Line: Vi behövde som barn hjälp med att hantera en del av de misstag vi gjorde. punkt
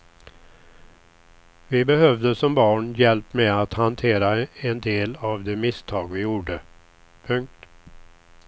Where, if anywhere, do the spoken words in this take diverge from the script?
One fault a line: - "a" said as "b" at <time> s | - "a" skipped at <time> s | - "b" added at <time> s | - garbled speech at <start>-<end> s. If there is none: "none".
none